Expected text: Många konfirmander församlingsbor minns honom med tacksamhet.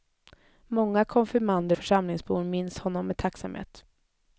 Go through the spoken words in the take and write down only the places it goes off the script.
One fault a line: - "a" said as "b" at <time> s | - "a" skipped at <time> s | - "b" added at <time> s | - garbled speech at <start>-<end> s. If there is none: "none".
none